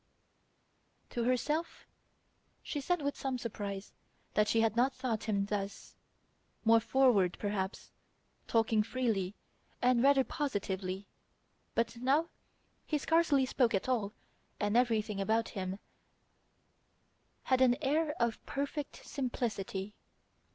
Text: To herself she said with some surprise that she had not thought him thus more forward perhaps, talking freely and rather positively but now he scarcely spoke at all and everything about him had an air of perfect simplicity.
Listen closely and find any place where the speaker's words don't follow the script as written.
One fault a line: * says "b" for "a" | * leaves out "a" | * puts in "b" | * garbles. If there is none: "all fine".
all fine